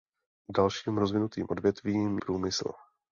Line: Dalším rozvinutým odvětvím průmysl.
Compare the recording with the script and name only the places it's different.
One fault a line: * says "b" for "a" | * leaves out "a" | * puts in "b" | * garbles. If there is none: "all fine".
all fine